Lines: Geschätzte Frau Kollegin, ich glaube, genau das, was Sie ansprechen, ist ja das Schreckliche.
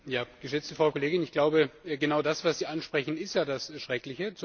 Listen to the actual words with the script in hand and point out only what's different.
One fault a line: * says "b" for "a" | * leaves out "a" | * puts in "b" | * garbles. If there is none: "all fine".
all fine